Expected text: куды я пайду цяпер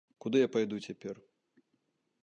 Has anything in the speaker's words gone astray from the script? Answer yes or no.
no